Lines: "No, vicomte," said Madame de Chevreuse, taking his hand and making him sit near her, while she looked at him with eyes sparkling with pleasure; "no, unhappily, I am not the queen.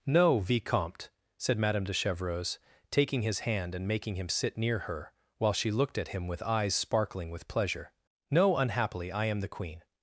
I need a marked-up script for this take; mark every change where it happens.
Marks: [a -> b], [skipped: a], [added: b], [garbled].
"No, vicomte," said Madame de Chevreuse, taking his hand and making him sit near her, while she looked at him with eyes sparkling with pleasure; "no, unhappily, I am [skipped: not] the queen.